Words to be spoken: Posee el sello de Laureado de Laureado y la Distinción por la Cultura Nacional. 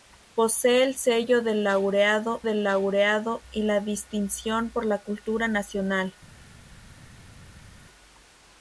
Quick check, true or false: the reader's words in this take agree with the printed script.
true